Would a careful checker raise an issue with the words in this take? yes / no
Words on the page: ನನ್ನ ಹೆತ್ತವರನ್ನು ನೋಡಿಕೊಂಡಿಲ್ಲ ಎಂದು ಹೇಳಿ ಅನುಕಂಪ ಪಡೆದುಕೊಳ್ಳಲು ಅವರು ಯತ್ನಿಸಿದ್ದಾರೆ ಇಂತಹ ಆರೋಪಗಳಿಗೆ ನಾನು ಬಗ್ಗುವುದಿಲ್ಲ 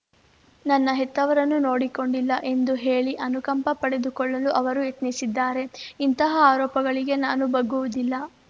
no